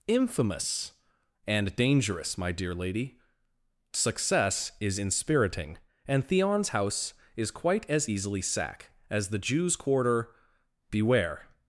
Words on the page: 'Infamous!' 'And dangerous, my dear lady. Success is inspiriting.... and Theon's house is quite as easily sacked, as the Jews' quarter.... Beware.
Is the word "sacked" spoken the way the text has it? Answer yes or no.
no